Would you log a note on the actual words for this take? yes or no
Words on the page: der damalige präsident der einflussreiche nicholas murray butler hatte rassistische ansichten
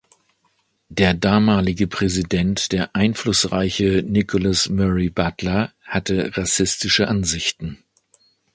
no